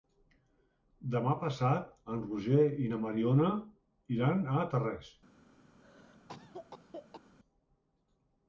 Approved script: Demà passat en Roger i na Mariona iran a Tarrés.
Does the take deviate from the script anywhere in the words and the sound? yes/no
yes